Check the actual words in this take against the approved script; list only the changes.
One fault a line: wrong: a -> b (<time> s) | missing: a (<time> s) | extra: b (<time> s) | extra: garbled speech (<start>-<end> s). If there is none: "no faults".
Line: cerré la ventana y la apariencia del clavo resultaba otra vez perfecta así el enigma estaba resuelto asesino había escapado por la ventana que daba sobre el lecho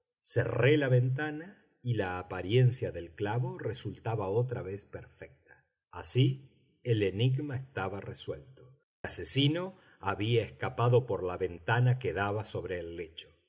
no faults